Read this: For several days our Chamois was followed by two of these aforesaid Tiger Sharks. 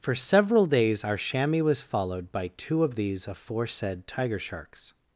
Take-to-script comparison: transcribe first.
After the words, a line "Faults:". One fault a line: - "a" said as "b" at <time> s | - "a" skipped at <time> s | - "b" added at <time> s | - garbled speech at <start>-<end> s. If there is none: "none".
For several days our Chamois was followed by two of these aforesaid Tiger Sharks.
Faults:
none